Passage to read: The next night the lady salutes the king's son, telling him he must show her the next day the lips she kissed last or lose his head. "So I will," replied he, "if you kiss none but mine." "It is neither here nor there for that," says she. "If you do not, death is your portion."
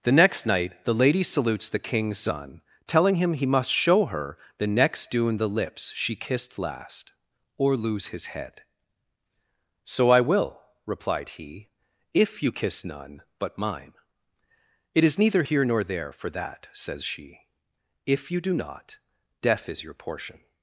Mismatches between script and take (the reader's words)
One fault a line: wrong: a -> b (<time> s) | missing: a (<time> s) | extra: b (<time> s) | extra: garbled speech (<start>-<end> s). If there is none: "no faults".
wrong: day -> dune (5.1 s)